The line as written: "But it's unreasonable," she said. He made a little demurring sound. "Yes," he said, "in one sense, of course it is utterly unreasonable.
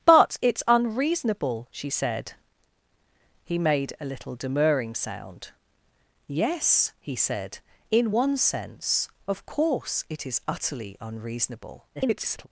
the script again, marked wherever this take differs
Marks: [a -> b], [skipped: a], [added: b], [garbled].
"But it's unreasonable," she said. He made a little demurring sound. "Yes," he said, "in one sense, of course it is utterly unreasonable. [garbled]